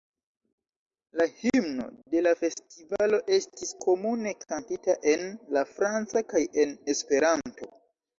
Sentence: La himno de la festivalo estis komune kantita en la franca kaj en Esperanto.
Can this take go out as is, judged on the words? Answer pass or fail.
pass